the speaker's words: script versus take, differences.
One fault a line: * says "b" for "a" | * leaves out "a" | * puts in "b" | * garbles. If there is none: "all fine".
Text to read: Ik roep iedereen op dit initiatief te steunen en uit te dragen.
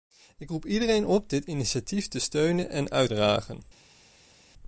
* leaves out "te"